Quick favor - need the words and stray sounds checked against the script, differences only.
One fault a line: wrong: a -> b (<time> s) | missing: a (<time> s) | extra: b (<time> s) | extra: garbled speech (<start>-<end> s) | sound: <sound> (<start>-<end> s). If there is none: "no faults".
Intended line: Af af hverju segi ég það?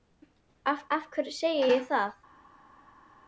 no faults